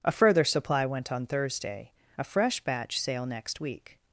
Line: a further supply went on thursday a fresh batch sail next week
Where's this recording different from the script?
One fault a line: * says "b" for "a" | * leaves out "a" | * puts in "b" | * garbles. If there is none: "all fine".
all fine